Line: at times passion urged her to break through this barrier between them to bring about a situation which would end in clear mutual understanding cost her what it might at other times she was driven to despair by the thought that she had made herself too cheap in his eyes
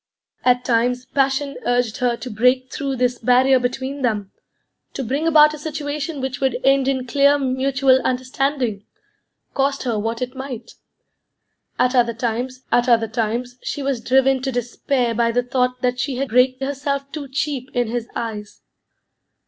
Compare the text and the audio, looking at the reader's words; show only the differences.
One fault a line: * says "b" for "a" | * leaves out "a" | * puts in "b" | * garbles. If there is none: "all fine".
* puts in "at other times"
* says "break" for "made"